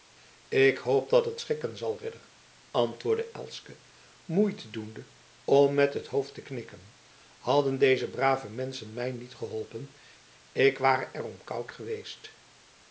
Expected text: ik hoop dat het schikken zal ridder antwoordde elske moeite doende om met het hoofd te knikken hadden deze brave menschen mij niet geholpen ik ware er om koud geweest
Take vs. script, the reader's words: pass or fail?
pass